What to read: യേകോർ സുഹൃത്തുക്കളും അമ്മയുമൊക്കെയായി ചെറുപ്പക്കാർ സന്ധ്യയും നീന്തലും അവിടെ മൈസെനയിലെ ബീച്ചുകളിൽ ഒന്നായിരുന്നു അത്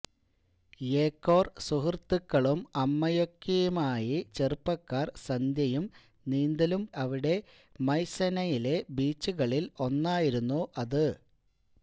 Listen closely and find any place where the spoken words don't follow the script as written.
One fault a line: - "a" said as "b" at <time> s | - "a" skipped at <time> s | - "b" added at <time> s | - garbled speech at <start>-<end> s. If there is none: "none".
none